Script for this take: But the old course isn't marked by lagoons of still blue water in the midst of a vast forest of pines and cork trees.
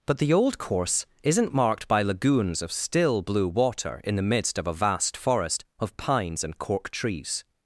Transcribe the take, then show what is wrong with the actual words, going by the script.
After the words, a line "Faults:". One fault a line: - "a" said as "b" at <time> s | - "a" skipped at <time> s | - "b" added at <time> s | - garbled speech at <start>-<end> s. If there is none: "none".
But the old course isn't marked by lagoons of still blue water in the midst of a vast forest of pines and cork trees.
Faults:
none